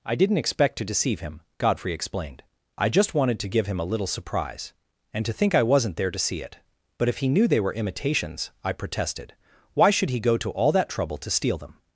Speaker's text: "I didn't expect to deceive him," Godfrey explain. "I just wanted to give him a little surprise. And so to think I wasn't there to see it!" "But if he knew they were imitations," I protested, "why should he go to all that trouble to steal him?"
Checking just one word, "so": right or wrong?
wrong